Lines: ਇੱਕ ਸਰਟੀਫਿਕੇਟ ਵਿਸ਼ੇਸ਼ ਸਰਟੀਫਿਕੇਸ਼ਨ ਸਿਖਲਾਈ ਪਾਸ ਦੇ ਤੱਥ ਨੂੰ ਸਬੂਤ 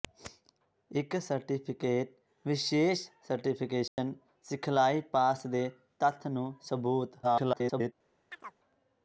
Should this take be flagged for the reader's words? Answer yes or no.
yes